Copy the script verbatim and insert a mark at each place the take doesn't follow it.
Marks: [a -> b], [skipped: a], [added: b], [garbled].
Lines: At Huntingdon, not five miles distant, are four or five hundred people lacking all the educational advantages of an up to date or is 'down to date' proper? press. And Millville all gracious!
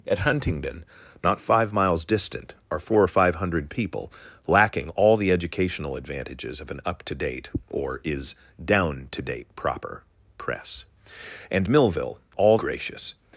At Huntingdon, not five miles distant, are four or five hundred people lacking all the educational advantages of an up to date or is 'down to date' proper? press. And Millville all gracious!